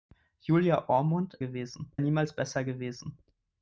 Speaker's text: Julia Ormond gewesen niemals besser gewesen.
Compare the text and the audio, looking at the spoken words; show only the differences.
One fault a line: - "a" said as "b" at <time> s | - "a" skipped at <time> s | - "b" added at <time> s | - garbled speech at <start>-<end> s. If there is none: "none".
none